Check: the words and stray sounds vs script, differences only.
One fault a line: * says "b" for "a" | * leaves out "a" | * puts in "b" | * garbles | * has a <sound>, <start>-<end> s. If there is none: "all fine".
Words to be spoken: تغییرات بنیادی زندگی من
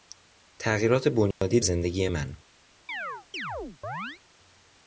* has a dropout, 1.3-1.4 s
* has a chirp, 2.9-4.2 s